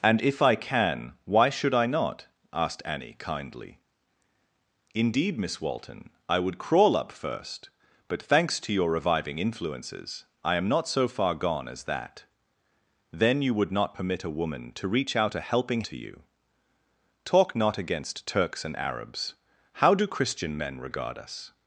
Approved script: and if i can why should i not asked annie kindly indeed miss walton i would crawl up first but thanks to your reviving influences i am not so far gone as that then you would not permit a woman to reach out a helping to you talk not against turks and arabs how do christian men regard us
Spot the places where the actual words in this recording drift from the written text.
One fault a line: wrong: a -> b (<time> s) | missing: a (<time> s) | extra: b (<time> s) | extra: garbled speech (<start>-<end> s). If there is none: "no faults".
no faults